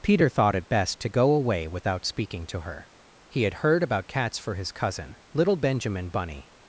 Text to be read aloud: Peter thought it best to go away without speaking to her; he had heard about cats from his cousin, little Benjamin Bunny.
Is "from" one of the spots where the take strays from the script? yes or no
yes